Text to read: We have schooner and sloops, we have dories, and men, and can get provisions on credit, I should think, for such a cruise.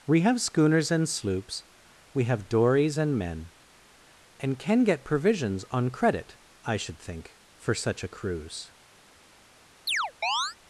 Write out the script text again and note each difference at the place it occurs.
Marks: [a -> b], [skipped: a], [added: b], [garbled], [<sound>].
We have [schooner -> schooners] and sloops, we have dories, and men, and can get provisions on credit, I should think, for such a cruise. [chirp]